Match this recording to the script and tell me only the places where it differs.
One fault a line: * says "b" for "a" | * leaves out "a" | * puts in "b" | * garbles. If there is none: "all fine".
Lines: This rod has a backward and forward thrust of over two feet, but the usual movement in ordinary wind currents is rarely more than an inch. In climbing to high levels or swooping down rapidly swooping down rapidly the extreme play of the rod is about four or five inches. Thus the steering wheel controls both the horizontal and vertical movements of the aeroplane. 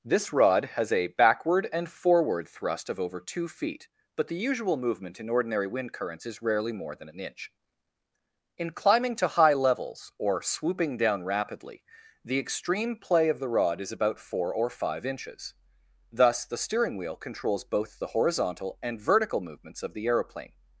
* leaves out "swooping down rapidly"